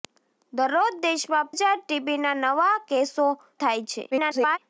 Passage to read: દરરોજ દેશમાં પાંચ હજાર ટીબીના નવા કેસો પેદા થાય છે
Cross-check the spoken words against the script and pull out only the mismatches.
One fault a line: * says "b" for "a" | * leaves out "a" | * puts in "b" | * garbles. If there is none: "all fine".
* leaves out "પાંચ"
* leaves out "પેદા"
* garbles